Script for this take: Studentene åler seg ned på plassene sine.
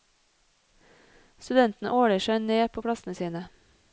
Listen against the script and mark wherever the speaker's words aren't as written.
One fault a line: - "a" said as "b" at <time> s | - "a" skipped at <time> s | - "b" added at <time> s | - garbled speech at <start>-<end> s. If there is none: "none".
none